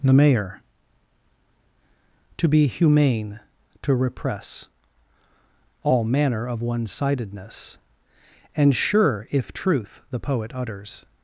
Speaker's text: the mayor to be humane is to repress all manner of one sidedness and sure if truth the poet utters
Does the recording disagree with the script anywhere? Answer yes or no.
yes